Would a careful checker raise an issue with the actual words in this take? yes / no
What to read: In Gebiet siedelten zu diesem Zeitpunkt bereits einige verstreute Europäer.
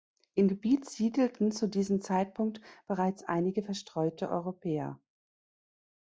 no